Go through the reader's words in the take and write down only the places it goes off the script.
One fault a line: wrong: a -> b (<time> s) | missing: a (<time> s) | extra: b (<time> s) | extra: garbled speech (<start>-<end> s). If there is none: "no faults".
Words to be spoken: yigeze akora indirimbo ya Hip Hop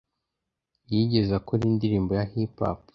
no faults